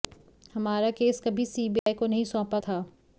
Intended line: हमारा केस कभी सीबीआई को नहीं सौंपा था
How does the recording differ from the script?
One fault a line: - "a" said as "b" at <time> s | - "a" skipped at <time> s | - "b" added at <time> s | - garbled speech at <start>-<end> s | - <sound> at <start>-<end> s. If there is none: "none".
- dropout at 1.8-1.9 s